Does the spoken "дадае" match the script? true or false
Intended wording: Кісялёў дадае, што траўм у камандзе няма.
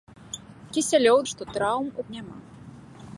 false